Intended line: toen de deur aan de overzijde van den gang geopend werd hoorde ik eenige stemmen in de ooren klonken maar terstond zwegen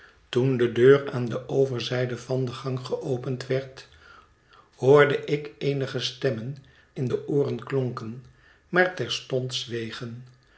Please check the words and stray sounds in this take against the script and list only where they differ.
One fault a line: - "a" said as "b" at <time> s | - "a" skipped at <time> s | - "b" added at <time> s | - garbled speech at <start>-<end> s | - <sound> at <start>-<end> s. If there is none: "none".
none